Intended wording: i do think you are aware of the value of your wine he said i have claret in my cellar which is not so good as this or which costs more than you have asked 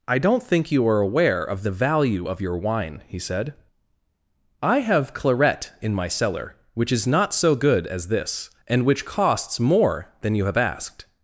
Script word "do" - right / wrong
wrong